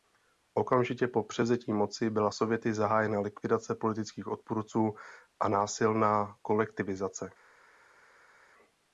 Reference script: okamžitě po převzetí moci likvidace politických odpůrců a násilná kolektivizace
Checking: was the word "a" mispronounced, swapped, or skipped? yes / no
no